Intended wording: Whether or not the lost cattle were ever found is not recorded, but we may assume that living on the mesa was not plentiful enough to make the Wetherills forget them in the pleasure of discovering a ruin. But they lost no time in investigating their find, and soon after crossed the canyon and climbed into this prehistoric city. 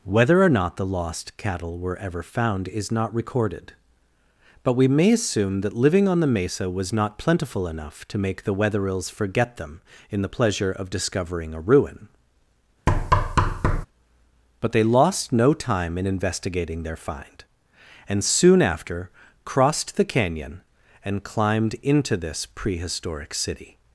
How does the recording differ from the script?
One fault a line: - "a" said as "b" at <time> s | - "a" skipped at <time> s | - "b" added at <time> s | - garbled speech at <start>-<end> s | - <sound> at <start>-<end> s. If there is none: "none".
- thud at 12.9-13.9 s